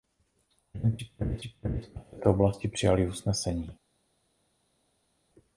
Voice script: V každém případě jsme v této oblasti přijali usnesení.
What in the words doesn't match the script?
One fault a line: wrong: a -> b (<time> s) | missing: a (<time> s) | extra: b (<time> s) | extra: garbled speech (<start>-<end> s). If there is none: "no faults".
extra: případě (1.4 s)